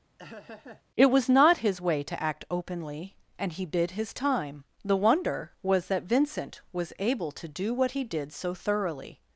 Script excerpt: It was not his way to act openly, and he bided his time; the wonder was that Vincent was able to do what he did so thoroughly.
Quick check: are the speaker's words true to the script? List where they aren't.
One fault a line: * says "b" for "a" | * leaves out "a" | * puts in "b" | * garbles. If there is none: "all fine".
* says "bid" for "bided"